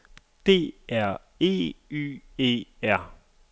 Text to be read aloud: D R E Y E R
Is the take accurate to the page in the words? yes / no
yes